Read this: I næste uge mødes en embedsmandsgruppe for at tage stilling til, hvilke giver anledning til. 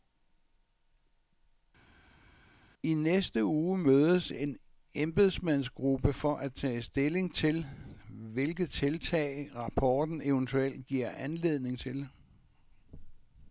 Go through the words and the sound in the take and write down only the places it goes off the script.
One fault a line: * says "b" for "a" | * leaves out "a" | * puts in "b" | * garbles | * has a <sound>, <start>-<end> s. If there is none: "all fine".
* puts in "tiltag rapporten eventuelt"